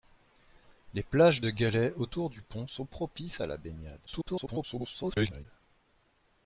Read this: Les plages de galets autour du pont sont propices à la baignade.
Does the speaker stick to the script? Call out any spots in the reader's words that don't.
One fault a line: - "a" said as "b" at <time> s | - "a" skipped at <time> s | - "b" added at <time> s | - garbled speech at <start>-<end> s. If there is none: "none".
- garbled speech at 4.1-5.5 s